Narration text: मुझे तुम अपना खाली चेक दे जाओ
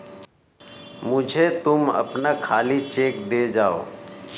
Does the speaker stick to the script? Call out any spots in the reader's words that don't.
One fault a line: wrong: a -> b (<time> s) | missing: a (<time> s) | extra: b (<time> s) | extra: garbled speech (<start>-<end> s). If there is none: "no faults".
no faults